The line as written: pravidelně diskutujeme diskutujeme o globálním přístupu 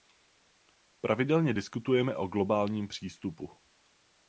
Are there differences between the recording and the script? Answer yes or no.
yes